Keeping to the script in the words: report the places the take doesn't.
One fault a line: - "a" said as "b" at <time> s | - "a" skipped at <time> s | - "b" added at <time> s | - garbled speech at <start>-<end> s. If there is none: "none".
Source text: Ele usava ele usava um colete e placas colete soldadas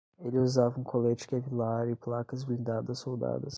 - "ele usava" skipped at 0.8 s
- "kevlar" added at 1.3 s
- "colete" said as "blindadas" at 2.4 s